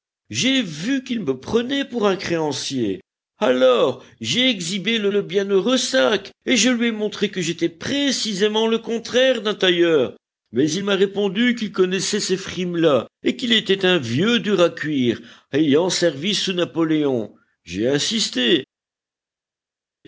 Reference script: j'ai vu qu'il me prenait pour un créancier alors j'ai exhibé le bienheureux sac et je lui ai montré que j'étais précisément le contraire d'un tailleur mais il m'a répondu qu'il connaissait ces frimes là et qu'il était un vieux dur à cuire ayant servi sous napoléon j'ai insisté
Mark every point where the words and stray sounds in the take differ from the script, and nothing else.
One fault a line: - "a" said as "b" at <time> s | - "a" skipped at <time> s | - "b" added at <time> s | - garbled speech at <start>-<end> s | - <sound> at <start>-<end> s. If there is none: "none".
- "le" added at 5.1 s